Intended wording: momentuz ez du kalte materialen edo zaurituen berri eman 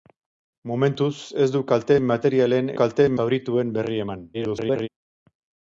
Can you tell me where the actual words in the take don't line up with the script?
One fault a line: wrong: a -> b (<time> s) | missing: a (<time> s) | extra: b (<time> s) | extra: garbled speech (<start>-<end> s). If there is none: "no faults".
wrong: edo -> kalte (2.8 s)
extra: garbled speech (4.3-4.9 s)